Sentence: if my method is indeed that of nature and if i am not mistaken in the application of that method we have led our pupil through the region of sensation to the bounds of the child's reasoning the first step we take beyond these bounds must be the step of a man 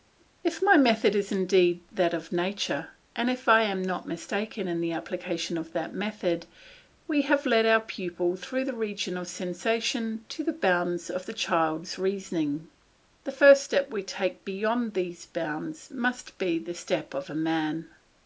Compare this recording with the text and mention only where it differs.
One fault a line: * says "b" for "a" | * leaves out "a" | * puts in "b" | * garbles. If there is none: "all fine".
all fine